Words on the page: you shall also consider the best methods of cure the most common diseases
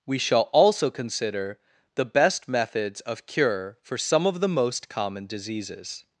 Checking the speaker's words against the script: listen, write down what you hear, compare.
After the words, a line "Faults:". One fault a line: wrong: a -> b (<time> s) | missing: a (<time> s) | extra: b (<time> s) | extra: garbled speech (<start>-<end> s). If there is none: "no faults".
we shall also consider the best methods of cure for some of the most common diseases
Faults:
wrong: you -> we (0.1 s)
extra: for some of (3.8 s)